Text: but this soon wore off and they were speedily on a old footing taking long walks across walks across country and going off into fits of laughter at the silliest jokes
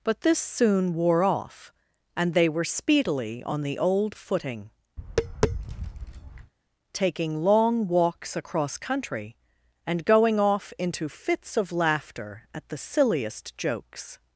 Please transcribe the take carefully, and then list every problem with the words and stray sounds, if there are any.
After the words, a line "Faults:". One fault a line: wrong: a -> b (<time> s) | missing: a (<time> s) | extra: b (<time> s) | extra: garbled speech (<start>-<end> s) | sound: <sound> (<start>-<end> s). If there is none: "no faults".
but this soon wore off and they were speedily on the old footing taking long walks across country and going off into fits of laughter at the silliest jokes
Faults:
wrong: a -> the (3.6 s)
sound: tap (5.0-6.5 s)
missing: walks across (8.8 s)